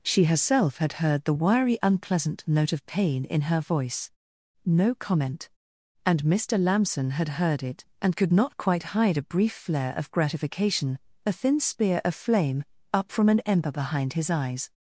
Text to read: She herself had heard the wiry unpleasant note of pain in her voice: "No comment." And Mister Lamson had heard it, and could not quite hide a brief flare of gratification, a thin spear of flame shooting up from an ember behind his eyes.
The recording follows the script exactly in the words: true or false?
false